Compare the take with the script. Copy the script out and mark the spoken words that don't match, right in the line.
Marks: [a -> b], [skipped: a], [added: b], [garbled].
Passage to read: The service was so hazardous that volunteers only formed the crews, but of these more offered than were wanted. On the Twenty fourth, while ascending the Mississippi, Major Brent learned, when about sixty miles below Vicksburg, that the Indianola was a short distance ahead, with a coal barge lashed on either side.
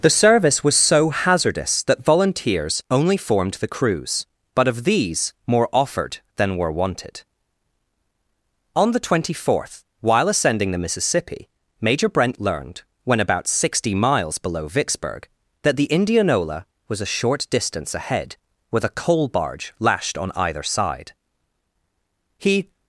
The service was so hazardous that volunteers only formed the crews, but of these more offered than were wanted. On the Twenty fourth, while ascending the Mississippi, Major Brent learned, when about sixty miles below Vicksburg, that the Indianola was a short distance ahead, with a coal barge lashed on either side. [added: He]